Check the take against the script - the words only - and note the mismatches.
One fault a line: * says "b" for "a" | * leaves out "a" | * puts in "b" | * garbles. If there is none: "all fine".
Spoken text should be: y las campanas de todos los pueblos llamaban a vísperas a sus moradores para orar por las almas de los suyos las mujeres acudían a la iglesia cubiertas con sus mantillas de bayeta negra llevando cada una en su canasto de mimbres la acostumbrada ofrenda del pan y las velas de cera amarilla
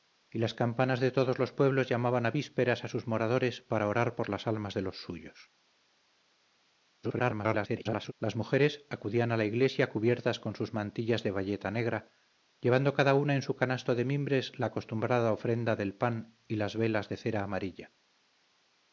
* garbles